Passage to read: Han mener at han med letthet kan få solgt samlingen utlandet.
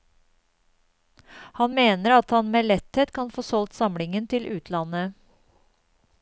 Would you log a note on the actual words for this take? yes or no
yes